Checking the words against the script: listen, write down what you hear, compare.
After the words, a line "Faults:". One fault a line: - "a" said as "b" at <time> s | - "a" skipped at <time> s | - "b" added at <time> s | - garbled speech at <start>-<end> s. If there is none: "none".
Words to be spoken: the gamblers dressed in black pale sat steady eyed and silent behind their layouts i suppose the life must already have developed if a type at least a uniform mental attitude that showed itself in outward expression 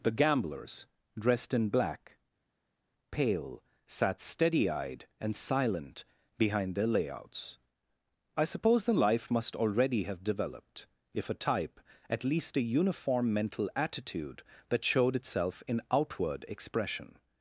the gamblers dressed in black pale sat steady eyed and silent behind their layouts i suppose the life must already have developed if a type at least a uniform mental attitude that showed itself in outward expression
Faults:
none